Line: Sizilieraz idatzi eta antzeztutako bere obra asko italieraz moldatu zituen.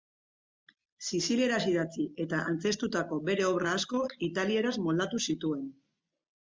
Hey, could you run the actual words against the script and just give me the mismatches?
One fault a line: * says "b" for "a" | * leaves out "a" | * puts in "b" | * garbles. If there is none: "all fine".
all fine